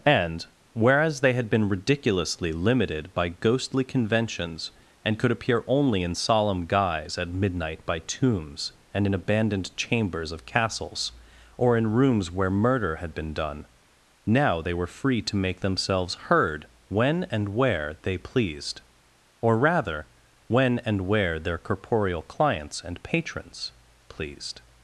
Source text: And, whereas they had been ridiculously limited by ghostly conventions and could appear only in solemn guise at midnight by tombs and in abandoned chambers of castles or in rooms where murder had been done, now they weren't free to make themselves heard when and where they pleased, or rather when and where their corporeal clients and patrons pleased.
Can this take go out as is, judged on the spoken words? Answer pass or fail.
fail